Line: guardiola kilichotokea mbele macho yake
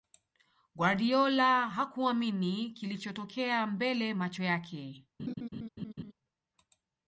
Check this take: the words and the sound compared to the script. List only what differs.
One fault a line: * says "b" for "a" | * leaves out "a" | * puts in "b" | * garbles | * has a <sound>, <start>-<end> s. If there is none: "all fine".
* puts in "hakuamini"
* has a laugh, 5.2-6.1 s